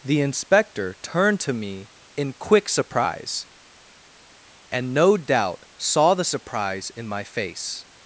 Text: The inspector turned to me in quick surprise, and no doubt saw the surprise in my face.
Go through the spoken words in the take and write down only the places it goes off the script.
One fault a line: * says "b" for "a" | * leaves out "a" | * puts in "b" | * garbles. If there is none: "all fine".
all fine